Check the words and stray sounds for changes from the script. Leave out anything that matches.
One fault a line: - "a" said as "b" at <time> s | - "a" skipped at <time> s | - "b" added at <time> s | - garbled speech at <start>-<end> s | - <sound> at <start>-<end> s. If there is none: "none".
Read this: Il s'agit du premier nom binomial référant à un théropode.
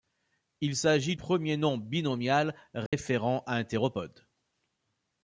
- "du" skipped at 1.1 s
- dropout at 2.9-2.9 s